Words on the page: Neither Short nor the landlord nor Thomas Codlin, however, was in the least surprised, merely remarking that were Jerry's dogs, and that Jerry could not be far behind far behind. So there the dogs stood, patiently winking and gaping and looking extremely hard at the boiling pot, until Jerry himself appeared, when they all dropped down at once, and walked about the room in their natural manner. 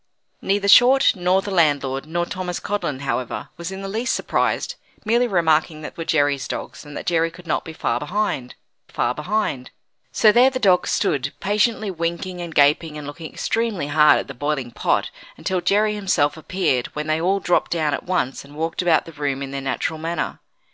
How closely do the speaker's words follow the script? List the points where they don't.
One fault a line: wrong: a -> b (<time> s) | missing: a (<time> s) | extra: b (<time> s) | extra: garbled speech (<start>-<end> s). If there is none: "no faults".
no faults